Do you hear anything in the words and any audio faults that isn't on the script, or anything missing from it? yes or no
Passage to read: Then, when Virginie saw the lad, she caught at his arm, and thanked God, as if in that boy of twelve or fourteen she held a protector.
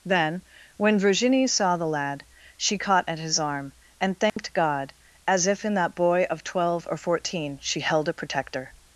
yes